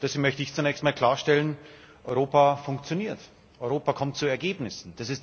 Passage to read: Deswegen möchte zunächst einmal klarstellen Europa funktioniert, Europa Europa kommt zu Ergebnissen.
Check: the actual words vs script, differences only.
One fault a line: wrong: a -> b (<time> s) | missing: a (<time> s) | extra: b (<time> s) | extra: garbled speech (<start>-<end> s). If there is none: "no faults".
extra: ich (0.4 s)
missing: Europa (3.9 s)